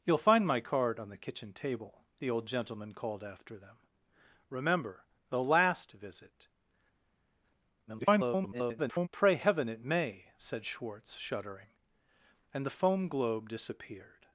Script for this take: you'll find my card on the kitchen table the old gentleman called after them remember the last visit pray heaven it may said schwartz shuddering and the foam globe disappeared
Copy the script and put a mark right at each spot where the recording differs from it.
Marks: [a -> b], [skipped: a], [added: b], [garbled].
you'll find my card on the kitchen table the old gentleman called after them remember the last visit [garbled] pray heaven it may said schwartz shuddering and the foam globe disappeared